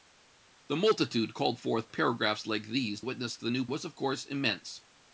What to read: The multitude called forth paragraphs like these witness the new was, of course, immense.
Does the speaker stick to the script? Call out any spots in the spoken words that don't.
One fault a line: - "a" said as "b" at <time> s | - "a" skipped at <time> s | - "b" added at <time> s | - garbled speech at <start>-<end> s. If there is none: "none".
none